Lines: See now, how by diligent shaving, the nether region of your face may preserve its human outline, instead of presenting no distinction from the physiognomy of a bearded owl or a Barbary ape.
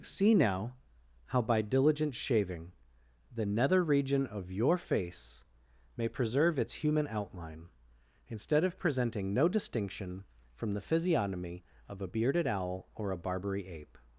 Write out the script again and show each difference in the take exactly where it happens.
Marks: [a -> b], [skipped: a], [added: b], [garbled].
See now, how by diligent shaving, the nether region of your face may preserve its human outline, instead of presenting no distinction from the physiognomy of a bearded owl or a Barbary ape.